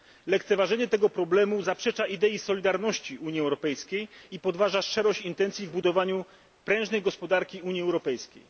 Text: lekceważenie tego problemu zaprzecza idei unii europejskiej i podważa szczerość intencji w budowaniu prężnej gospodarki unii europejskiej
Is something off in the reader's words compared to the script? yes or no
yes